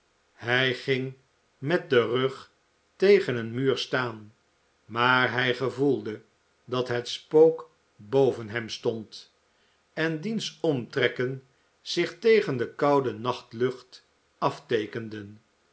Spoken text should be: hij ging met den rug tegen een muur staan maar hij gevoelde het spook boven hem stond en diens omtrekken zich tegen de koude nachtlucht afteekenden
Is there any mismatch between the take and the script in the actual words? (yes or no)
yes